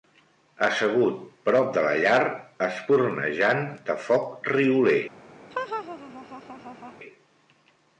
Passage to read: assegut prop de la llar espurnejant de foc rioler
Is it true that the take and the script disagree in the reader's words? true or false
false